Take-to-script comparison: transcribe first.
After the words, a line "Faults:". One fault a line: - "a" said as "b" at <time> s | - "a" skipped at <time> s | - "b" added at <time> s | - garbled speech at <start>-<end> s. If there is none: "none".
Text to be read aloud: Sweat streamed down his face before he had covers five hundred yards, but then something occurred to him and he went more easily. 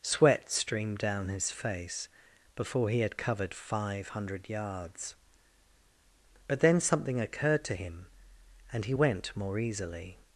Sweat streamed down his face before he had covered five hundred yards, but then something occurred to him and he went more easily.
Faults:
- "covers" said as "covered" at 3.2 s